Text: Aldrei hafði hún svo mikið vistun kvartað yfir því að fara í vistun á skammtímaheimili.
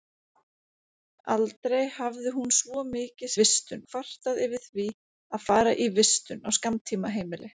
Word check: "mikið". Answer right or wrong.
right